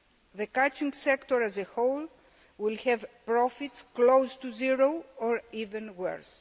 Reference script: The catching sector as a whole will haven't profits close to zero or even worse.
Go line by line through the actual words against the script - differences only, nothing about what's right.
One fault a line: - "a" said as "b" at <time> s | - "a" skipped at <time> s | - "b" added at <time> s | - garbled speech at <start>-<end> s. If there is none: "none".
- "haven't" said as "have" at 2.8 s